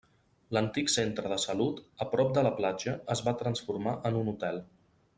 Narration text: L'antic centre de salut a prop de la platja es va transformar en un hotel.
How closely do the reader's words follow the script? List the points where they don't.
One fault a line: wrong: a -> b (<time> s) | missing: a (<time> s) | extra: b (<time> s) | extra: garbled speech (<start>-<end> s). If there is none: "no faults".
no faults